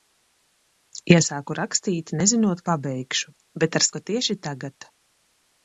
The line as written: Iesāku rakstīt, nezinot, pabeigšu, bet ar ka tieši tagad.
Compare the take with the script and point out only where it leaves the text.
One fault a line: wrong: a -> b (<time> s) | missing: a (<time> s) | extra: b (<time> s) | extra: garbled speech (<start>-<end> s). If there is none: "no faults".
no faults